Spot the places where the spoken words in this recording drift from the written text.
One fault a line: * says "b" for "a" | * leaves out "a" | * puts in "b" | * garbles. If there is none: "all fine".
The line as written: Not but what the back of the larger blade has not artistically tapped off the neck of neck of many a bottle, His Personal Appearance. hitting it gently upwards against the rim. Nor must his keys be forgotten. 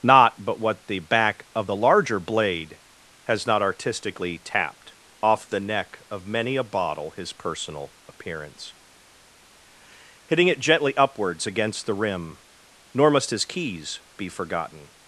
* leaves out "neck of"